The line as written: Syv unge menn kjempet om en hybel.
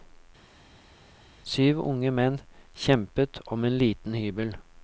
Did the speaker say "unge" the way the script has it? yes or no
yes